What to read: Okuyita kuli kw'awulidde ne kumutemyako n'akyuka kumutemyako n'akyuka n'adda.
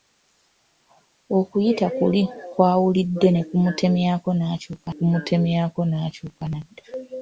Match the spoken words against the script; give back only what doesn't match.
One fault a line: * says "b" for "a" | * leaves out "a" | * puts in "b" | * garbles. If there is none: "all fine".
all fine